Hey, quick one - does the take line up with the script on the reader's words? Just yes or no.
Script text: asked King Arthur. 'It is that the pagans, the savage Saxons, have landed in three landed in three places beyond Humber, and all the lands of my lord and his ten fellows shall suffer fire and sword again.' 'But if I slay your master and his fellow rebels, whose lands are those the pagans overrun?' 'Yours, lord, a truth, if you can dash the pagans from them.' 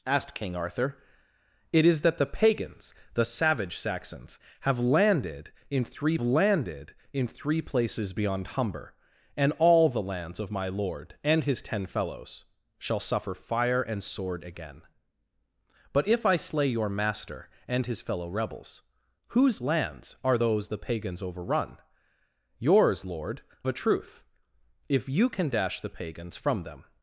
yes